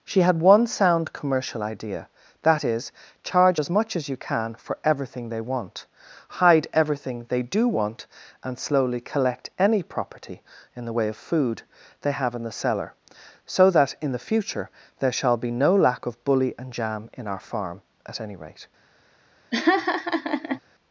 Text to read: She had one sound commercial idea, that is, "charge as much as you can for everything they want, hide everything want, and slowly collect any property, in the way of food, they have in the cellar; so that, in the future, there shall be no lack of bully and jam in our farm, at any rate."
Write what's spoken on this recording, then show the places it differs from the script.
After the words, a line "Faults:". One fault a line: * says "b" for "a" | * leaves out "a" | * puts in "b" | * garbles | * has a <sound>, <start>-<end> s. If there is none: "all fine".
She had one sound commercial idea, that is, "charge as much as you can for everything they want, hide everything they do want, and slowly collect any property, in the way of food, they have in the cellar; so that, in the future, there shall be no lack of bully and jam in our farm, at any rate."
Faults:
* puts in "they do"
* has a laugh, 19.5-20.6 s